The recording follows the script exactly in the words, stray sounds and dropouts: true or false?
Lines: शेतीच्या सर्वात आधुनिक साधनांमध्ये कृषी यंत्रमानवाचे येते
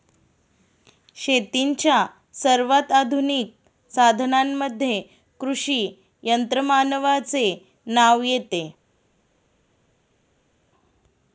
false